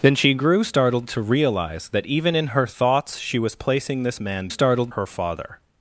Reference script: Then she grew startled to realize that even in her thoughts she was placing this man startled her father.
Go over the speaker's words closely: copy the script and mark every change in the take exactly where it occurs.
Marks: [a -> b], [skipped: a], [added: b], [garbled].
Then she grew startled to realize that even in her thoughts she was placing this man startled her father.